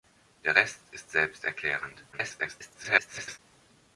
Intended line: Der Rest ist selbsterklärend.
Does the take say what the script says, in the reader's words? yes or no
no